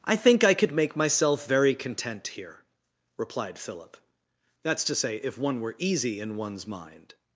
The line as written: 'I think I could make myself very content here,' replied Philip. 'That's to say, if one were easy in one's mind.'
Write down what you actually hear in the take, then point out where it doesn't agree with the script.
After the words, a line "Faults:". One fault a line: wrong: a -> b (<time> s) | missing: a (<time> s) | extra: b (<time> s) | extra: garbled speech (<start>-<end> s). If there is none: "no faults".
'I think I could make myself very content here,' replied Philip. 'That's to say, if one were easy in one's mind.'
Faults:
no faults